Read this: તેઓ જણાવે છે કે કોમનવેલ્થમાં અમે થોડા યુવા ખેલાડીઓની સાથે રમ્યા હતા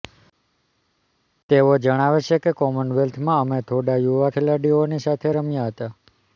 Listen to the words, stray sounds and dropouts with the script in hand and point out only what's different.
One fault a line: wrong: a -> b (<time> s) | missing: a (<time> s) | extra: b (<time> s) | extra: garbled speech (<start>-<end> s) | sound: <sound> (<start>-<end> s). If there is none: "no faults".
no faults